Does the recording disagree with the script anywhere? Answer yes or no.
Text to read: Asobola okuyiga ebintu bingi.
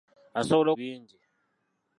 yes